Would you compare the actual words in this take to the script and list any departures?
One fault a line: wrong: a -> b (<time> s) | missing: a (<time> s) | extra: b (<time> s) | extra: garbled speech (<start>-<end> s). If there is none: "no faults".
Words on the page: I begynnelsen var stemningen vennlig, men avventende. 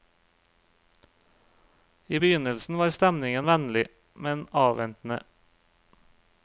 no faults